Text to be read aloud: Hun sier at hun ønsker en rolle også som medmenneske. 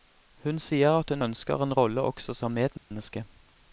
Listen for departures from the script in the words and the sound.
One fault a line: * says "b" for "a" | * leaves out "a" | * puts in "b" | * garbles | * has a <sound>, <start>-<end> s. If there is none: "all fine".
* has a dropout, 2.8-2.9 s